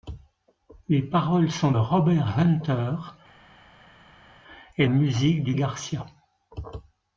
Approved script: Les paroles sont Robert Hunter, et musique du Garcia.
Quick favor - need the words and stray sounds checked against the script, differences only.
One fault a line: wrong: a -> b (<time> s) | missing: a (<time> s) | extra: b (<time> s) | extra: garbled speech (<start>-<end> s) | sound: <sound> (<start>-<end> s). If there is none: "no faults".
no faults